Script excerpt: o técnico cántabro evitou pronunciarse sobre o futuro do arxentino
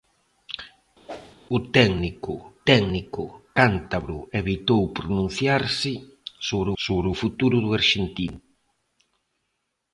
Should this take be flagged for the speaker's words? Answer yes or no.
yes